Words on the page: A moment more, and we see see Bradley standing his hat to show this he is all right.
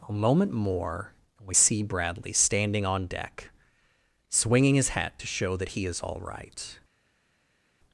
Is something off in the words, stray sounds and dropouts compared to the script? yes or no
yes